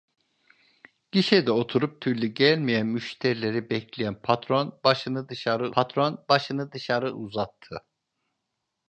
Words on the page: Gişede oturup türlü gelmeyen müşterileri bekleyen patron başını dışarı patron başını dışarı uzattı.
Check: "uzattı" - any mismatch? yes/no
no